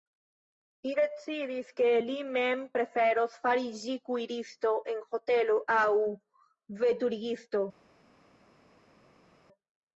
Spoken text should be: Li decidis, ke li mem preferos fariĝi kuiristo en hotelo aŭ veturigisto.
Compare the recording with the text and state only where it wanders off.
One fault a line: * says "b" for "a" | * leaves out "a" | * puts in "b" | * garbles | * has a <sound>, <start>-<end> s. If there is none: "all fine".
all fine